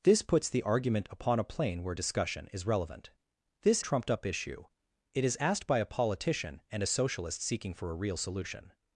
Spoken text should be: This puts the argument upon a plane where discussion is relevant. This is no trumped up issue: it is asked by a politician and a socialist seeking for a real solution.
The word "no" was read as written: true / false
false